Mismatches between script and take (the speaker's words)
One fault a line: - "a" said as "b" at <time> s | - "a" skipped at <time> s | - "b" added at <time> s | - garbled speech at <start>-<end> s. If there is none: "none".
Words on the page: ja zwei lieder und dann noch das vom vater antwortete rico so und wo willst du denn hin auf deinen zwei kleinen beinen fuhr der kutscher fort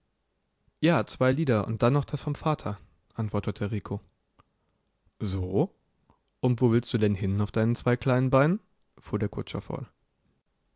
none